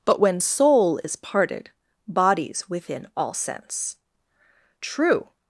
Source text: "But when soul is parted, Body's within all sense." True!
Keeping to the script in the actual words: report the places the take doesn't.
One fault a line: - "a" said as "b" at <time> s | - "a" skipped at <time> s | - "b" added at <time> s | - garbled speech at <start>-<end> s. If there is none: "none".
none